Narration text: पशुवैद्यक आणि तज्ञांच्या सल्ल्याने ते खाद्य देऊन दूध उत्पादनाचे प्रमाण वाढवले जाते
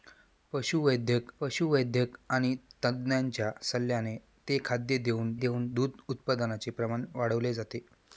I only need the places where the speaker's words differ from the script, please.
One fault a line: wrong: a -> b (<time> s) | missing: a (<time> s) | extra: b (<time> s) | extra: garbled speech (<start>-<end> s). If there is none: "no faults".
extra: पशुवैद्यक (1.4 s)
extra: देऊन (5.4 s)